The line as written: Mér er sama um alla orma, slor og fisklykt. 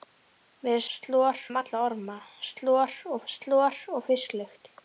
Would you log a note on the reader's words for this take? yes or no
yes